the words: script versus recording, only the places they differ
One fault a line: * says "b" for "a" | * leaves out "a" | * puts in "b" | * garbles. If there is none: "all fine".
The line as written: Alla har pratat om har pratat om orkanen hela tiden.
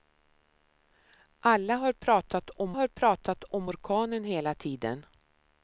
all fine